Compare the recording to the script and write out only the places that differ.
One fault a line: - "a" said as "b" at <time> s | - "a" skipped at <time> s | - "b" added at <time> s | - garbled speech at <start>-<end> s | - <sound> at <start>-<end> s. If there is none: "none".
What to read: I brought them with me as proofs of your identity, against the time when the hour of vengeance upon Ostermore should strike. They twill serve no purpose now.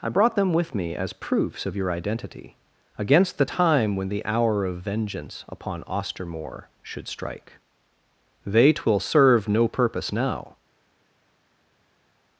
none